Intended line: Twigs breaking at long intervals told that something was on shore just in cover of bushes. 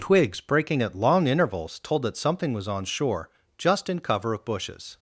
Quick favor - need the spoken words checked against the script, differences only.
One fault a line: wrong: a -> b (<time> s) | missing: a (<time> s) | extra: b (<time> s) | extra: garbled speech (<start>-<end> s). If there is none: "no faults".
no faults